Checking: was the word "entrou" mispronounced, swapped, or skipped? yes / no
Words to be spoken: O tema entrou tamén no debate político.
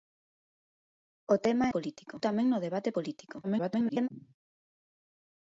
yes